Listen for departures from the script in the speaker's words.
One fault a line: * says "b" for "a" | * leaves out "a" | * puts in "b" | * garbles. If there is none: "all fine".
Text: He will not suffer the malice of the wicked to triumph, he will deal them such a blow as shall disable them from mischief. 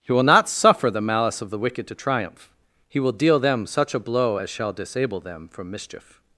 all fine